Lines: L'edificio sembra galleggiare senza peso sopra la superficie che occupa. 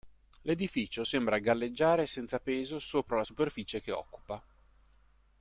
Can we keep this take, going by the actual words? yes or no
yes